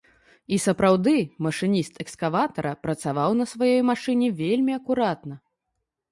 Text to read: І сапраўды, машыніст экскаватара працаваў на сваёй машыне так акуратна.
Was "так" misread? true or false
true